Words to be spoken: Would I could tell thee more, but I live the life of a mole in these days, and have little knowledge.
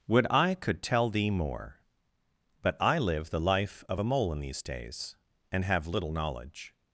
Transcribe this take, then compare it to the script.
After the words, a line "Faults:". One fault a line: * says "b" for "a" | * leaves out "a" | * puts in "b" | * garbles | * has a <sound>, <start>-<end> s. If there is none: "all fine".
Would I could tell thee more, but I live the life of a mole in these days, and have little knowledge.
Faults:
all fine